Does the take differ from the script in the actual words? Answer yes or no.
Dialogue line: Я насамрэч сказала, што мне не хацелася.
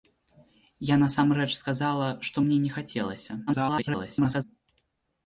yes